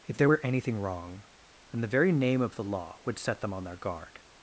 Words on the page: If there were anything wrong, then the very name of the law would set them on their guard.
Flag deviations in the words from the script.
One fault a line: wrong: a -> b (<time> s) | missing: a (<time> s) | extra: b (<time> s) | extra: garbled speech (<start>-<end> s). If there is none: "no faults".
no faults